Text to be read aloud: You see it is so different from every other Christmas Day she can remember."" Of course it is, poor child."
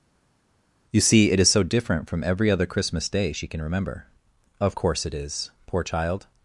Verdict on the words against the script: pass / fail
pass